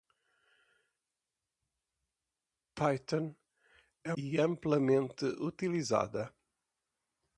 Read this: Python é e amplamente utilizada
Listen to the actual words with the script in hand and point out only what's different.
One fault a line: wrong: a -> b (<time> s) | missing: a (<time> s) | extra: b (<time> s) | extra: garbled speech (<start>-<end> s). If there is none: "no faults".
no faults